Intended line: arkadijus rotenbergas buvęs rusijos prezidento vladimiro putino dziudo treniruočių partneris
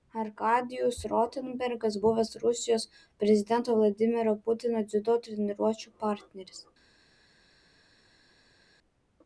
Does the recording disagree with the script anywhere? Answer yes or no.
no